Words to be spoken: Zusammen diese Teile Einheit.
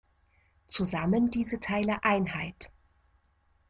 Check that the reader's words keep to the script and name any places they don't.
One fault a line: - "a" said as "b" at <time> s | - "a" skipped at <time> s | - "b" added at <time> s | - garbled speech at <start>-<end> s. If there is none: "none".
none